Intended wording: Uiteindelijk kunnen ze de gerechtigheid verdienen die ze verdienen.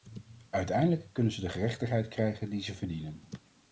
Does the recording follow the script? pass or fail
fail